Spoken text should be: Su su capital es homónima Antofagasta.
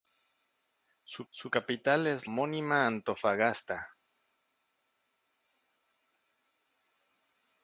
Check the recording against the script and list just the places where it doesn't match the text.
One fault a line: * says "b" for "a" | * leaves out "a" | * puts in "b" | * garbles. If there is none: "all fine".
all fine